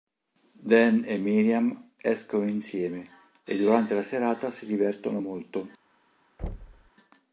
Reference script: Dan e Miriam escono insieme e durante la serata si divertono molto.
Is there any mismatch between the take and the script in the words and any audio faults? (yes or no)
yes